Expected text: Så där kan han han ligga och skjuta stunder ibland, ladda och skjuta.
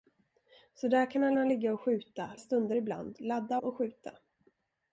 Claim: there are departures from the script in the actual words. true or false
false